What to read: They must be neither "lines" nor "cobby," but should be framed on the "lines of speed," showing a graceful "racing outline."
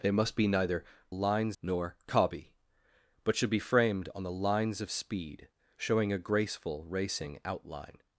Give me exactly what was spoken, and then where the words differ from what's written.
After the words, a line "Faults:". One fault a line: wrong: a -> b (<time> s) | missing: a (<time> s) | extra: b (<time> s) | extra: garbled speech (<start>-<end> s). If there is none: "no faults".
They must be neither "lines" nor "cobby," but should be framed on the "lines of speed," showing a graceful "racing outline."
Faults:
no faults